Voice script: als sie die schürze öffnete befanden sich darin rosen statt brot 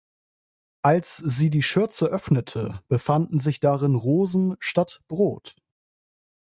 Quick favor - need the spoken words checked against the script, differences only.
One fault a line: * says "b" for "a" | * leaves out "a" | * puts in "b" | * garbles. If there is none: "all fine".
all fine